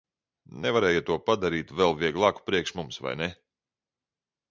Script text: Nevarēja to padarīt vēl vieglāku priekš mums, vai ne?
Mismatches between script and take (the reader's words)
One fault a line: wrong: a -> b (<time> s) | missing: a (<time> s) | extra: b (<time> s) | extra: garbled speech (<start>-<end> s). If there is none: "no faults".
no faults